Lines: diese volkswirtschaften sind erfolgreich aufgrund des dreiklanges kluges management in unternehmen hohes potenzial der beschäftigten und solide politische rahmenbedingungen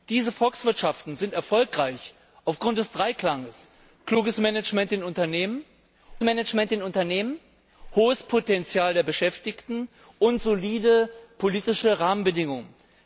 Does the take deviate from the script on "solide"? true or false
false